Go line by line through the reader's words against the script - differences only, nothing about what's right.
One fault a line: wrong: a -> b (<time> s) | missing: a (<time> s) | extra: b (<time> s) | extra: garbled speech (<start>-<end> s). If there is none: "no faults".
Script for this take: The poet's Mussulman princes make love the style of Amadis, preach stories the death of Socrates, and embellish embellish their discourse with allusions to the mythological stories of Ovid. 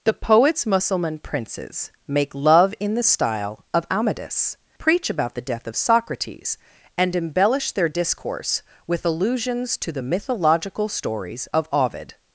extra: in (2.8 s)
wrong: stories -> about (5.1 s)
missing: embellish (7.7 s)